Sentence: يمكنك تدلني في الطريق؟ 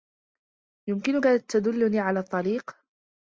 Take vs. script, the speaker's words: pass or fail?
fail